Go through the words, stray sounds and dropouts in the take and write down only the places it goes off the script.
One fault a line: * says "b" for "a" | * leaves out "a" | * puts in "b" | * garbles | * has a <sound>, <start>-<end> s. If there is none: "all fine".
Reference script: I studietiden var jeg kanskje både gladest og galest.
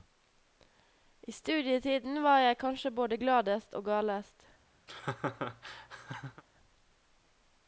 * has a laugh, 4.9-6.4 s